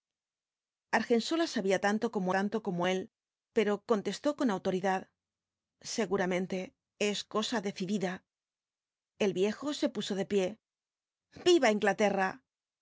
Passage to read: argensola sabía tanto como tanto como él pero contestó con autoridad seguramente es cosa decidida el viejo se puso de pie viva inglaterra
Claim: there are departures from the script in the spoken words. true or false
false